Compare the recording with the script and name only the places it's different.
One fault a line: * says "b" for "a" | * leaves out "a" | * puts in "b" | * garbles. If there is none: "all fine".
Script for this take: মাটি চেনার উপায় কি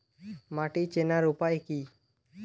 all fine